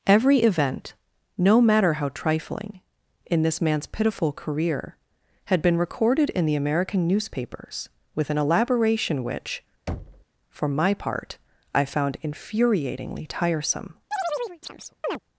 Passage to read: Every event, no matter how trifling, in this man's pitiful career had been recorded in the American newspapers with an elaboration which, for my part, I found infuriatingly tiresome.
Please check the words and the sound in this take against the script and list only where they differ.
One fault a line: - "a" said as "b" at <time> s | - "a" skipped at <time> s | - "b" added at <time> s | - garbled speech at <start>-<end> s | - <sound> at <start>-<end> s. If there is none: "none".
- thud at 9.9-10.2 s
- chirp at 14.1-15.2 s